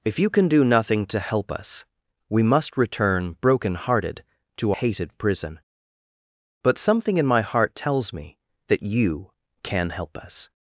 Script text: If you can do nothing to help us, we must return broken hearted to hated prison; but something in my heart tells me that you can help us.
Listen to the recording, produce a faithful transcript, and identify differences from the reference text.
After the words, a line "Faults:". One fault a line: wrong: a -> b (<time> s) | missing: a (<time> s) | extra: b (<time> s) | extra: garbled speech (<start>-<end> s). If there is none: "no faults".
If you can do nothing to help us, we must return broken hearted to hated prison; but something in my heart tells me that you can help us.
Faults:
no faults